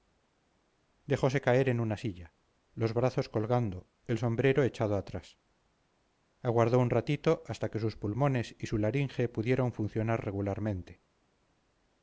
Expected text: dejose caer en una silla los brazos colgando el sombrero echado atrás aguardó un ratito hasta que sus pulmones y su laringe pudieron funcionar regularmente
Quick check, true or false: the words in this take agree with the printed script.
true